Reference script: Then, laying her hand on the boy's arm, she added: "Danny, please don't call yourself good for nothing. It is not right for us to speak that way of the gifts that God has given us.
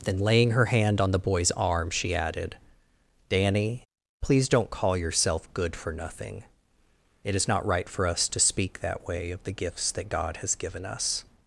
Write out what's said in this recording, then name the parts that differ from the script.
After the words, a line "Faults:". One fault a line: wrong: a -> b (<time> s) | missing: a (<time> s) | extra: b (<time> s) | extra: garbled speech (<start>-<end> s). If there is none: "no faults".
Then, laying her hand on the boy's arm, she added: "Danny, please don't call yourself good for nothing. It is not right for us to speak that way of the gifts that God has given us.
Faults:
no faults